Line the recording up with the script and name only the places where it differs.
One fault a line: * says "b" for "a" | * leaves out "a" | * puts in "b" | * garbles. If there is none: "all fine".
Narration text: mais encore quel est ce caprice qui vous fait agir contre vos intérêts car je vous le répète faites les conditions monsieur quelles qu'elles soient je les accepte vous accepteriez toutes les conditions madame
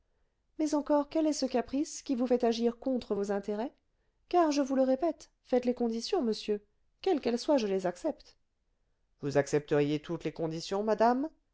all fine